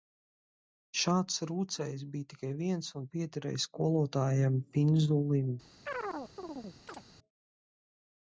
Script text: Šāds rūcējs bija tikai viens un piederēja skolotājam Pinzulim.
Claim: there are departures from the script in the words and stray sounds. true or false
true